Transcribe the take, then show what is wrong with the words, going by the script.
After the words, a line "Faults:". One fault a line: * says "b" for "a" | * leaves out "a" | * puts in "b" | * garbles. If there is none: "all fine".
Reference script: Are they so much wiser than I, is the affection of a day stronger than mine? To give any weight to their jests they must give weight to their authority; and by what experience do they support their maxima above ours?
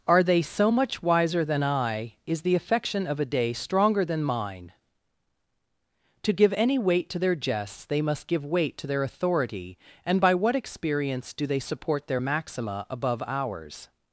Are they so much wiser than I, is the affection of a day stronger than mine? To give any weight to their jests they must give weight to their authority; and by what experience do they support their maxima above ours?
Faults:
all fine